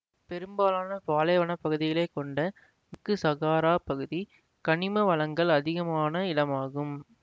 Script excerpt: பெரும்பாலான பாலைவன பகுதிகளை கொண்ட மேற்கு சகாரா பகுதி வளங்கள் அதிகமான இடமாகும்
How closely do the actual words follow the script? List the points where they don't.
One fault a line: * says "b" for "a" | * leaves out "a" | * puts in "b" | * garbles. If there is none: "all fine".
* puts in "கனிம"